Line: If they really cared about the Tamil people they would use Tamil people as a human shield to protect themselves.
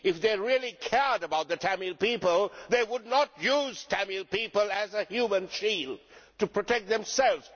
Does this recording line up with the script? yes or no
no